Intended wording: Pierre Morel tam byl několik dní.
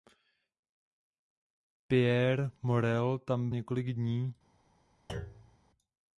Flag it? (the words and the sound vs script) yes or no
yes